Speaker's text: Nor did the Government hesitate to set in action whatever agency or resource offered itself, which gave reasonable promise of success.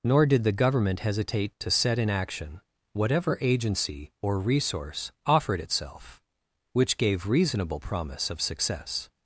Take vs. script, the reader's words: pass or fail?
pass